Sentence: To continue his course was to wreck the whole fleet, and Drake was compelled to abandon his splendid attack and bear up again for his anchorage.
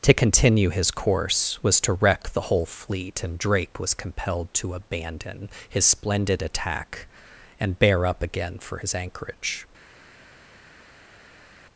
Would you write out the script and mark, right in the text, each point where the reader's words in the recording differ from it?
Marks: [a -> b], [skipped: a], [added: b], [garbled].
To continue his course was to wreck the whole fleet, and Drake was compelled to abandon his splendid attack and bear up again for his anchorage.